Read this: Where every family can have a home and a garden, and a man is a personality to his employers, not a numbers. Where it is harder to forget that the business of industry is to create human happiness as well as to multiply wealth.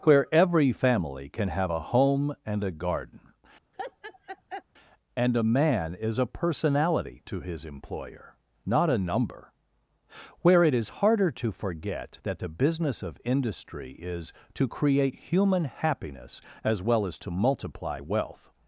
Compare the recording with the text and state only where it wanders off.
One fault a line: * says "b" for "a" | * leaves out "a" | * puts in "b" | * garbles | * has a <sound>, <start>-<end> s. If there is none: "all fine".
* has a laugh, 3.7-4.6 s
* says "employer" for "employers"
* says "number" for "numbers"